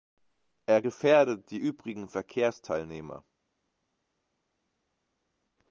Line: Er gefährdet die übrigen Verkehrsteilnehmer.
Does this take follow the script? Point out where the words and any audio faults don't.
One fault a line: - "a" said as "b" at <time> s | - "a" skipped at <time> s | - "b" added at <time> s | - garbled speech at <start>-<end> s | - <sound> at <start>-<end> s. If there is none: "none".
none